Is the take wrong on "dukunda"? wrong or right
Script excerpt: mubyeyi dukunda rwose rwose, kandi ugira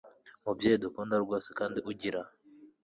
right